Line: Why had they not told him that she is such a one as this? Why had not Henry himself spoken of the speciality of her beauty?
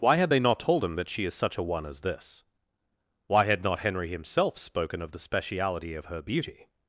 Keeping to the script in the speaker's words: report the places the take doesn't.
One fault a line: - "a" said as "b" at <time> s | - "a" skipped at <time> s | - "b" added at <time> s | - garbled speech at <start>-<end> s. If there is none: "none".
none